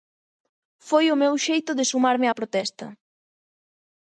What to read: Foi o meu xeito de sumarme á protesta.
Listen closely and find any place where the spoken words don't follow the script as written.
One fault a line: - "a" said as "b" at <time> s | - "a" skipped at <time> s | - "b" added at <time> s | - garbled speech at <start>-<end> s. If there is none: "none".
none